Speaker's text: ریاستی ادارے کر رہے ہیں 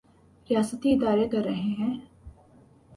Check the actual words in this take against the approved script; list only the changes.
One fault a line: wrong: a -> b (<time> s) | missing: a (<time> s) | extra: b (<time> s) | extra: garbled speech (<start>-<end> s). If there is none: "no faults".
no faults